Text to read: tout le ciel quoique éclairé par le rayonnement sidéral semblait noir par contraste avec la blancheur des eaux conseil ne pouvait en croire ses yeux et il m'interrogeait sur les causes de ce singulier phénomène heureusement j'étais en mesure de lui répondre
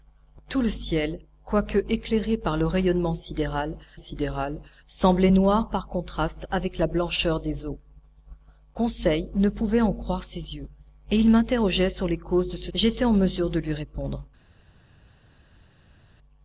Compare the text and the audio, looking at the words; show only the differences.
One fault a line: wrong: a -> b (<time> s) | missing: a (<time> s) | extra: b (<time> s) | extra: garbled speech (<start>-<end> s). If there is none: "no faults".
extra: sidéral (3.9 s)
missing: singulier phénomène heureusement (12.7 s)